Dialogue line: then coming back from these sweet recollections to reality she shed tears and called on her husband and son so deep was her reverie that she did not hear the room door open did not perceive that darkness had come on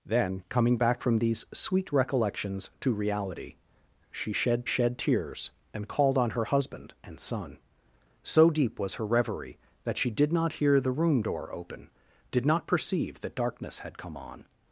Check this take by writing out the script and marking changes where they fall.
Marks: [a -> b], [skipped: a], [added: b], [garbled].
then coming back from these sweet recollections to reality she shed [added: shed] tears and called on her husband and son so deep was her reverie that she did not hear the room door open did not perceive that darkness had come on